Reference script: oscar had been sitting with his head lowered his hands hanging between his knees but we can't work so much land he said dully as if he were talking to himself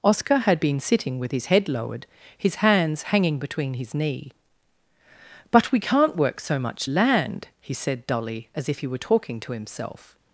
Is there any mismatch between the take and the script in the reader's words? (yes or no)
yes